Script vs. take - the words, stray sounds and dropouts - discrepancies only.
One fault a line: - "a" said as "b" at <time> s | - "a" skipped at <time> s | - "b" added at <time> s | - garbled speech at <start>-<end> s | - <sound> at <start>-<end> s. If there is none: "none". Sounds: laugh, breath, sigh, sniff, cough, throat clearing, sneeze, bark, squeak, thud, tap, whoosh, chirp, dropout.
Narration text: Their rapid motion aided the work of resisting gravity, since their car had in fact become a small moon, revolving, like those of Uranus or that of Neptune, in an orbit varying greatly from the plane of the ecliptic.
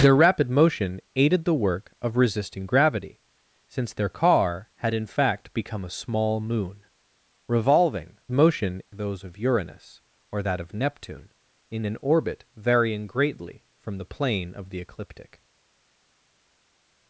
- "like" said as "motion" at 8.3 s